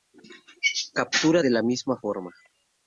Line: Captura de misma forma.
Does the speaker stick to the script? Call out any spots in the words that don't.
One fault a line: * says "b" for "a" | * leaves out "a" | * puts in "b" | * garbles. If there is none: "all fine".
* puts in "la"